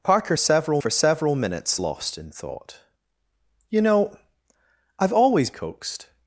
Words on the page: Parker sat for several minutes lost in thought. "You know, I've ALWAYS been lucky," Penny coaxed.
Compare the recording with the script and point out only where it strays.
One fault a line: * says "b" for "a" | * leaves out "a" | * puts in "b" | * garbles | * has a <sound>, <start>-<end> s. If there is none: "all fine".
* says "several" for "sat"
* leaves out "been lucky Penny"